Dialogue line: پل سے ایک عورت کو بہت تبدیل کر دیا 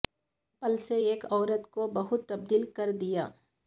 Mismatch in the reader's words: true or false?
false